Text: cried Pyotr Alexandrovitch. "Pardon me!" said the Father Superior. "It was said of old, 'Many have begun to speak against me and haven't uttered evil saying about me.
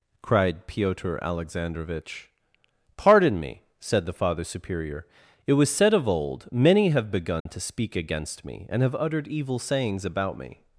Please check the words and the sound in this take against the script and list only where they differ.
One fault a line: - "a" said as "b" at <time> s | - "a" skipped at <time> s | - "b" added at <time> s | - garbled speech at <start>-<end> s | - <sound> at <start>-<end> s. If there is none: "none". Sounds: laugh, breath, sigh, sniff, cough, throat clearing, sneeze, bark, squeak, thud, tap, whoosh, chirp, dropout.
- dropout at 7.4-7.5 s
- "haven't" said as "have" at 8.8 s
- "saying" said as "sayings" at 9.6 s